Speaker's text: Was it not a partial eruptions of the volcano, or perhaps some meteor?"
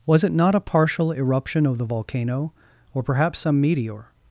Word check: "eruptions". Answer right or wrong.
wrong